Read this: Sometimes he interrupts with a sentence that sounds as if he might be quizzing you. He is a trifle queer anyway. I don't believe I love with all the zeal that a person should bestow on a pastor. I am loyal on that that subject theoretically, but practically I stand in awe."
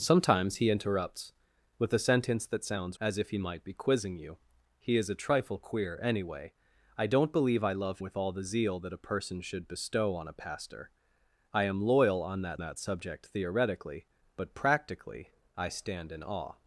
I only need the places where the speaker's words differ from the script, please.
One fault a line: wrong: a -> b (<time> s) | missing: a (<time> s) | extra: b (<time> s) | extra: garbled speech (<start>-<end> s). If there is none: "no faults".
no faults